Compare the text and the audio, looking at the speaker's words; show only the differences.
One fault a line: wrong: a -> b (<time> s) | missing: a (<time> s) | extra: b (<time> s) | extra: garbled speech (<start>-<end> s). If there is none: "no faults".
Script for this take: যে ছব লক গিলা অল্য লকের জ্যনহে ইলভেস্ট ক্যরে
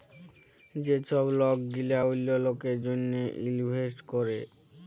no faults